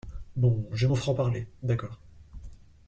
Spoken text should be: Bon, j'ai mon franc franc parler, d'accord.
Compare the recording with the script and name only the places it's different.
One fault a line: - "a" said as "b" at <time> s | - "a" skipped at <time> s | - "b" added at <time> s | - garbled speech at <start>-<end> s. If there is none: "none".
- "franc" skipped at 1.1 s